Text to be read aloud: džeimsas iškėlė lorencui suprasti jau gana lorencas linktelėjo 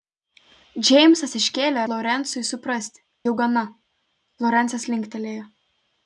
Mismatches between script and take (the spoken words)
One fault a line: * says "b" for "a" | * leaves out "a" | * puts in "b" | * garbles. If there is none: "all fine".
all fine